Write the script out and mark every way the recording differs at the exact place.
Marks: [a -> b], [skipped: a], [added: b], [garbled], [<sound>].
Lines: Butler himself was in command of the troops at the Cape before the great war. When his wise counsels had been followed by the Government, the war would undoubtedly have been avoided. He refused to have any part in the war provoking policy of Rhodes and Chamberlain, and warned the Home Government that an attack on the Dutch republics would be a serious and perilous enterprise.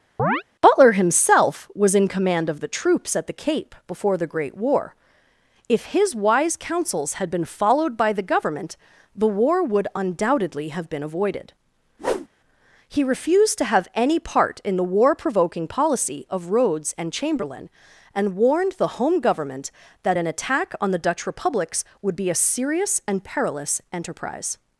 [chirp] Butler himself was in command of the troops at the Cape before the great war. [When -> If] his wise counsels had been followed by the Government, the war would undoubtedly have been avoided. [whoosh] He refused to have any part in the war provoking policy of Rhodes and Chamberlain, and warned the Home Government that an attack on the Dutch republics would be a serious and perilous enterprise.